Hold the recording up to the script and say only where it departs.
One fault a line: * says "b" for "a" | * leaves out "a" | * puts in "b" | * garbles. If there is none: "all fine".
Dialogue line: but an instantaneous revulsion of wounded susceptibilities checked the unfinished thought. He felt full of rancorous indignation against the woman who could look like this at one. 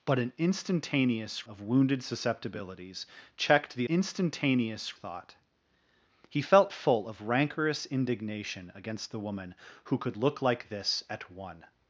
* leaves out "revulsion"
* says "instantaneous" for "unfinished"